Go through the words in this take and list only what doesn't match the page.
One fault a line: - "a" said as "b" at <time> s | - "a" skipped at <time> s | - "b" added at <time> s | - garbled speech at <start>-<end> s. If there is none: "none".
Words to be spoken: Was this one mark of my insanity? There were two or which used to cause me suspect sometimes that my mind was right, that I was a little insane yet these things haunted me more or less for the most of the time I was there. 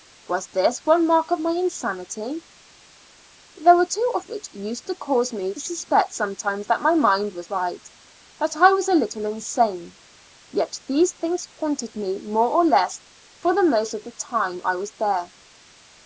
none